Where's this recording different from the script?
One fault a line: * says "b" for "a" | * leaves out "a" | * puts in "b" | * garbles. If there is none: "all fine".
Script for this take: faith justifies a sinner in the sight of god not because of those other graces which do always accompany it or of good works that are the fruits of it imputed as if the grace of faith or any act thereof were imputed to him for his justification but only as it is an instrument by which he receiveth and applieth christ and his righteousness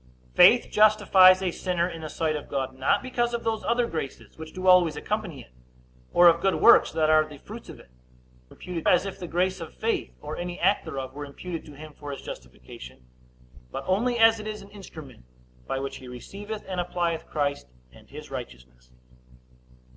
all fine